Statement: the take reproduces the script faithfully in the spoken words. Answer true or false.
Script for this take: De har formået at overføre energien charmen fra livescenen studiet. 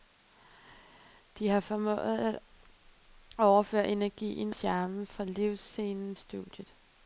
true